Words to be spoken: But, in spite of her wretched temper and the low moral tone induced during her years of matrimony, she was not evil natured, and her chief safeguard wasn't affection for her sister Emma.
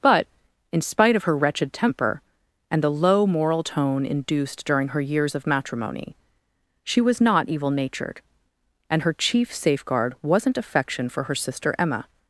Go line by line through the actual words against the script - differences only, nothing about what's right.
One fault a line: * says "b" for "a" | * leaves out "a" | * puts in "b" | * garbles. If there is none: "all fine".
all fine